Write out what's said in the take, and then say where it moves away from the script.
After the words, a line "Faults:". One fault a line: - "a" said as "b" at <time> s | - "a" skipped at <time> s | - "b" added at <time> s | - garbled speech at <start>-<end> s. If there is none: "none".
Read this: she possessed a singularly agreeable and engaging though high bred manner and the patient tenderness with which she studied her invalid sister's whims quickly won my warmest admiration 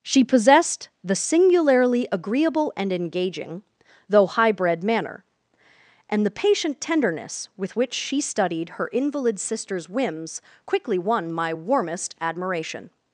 she possessed the singularly agreeable and engaging though high bred manner and the patient tenderness with which she studied her invalid sister's whims quickly won my warmest admiration
Faults:
- "a" said as "the" at 1.0 s